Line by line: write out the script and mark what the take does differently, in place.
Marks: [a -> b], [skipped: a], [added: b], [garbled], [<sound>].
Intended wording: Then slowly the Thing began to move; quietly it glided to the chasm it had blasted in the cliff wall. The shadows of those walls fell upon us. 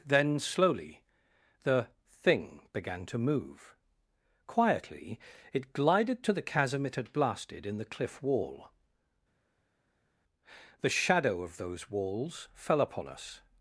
Then slowly the Thing began to move; quietly it glided to the chasm it had blasted in the cliff wall. The [shadows -> shadow] of those walls fell upon us.